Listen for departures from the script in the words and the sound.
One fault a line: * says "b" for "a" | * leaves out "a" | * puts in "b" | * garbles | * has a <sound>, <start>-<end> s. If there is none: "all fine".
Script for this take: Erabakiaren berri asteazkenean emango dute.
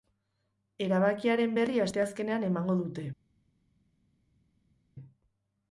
all fine